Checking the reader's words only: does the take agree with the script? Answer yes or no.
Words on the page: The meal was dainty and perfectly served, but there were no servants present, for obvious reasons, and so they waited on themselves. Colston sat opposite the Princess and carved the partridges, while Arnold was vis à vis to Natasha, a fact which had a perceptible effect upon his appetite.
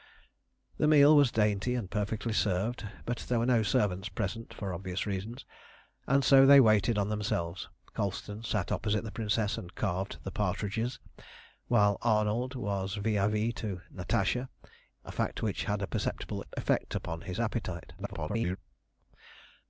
no